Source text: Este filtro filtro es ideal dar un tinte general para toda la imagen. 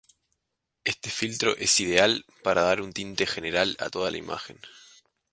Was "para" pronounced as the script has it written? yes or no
no